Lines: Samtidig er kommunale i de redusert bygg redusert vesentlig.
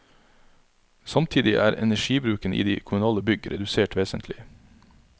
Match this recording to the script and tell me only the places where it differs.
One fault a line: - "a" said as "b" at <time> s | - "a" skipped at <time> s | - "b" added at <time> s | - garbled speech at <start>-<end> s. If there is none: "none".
- "kommunale" said as "energibruken" at 1.7 s
- "redusert" said as "kommunale" at 2.8 s